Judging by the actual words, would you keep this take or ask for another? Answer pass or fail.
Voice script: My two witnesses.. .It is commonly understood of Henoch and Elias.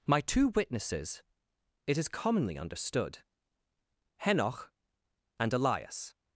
fail